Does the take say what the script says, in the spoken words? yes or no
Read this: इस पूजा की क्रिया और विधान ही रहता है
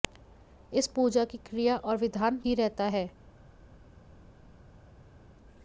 yes